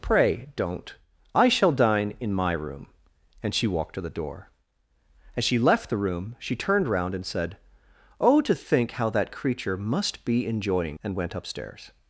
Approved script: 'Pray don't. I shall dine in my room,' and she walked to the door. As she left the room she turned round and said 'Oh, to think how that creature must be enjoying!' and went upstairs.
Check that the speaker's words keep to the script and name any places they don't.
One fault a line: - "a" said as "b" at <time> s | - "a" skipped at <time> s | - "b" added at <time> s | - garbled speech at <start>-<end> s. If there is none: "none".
none